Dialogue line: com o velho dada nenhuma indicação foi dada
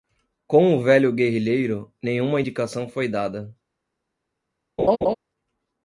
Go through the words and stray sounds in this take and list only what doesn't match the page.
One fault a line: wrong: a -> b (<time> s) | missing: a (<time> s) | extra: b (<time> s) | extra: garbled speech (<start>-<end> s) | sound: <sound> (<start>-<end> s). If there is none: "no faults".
wrong: dada -> guerrilheiro (1.1 s)
sound: laugh (4.8-5.1 s)